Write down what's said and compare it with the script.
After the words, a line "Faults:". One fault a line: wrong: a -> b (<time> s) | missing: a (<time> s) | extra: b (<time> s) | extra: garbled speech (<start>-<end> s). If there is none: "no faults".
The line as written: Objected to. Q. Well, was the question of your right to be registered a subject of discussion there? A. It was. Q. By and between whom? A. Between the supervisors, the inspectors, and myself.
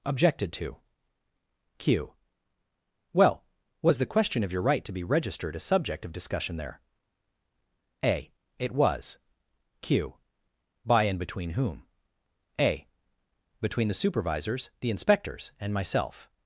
Objected to. Q. Well, was the question of your right to be registered a subject of discussion there? A. It was. Q. By and between whom? A. Between the supervisors, the inspectors, and myself.
Faults:
no faults